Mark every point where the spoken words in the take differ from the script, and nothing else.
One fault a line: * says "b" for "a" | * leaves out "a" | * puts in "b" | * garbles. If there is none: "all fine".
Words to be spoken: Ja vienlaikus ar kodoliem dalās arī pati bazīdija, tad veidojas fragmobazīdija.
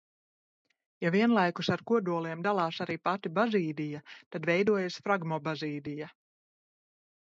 all fine